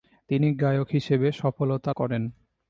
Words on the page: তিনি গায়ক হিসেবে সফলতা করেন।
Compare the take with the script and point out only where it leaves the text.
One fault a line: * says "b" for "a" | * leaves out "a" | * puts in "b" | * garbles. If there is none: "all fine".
all fine